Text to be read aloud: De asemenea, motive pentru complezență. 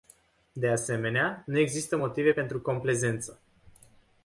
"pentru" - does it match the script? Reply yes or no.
yes